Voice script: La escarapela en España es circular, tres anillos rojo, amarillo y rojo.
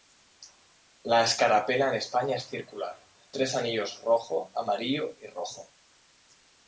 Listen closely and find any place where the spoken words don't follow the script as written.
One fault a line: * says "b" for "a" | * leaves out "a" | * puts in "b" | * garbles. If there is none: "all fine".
all fine